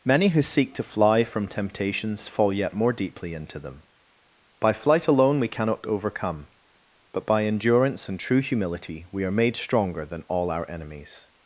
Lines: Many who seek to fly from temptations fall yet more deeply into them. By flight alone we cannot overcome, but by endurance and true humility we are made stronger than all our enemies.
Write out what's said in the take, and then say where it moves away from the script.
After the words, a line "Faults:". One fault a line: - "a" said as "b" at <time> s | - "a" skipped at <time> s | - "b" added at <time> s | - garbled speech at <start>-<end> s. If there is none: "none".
Many who seek to fly from temptations fall yet more deeply into them. By flight alone we cannot overcome, but by endurance and true humility we are made stronger than all our enemies.
Faults:
none